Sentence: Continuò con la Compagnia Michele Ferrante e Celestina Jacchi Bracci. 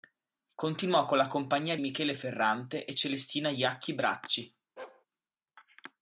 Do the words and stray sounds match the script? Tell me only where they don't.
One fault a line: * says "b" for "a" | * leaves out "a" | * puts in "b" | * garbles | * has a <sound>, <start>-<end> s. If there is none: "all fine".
* has a bark, 4.8-5.1 s